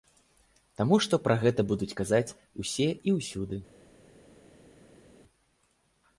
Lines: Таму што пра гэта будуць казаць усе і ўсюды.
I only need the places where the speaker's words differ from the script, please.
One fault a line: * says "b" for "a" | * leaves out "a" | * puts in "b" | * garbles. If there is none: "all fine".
all fine